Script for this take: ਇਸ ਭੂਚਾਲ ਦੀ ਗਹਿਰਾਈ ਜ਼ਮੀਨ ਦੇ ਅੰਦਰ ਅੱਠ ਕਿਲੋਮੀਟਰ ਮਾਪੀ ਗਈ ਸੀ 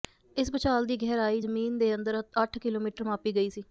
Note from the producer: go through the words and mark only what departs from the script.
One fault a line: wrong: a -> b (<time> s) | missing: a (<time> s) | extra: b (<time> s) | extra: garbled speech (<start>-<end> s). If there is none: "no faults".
no faults